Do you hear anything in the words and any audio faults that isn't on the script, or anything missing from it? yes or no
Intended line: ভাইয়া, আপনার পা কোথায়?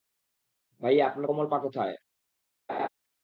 yes